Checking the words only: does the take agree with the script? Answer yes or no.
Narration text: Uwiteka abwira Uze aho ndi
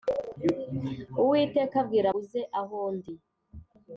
yes